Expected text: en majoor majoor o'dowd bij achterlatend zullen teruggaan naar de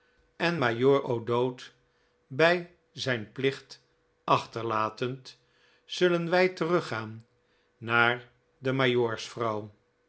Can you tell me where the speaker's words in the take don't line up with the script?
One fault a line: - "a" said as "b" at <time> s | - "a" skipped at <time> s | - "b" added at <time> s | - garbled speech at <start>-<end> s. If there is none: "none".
- "majoor" skipped at 1.0 s
- "zijn plicht" added at 2.9 s
- "wij" added at 6.3 s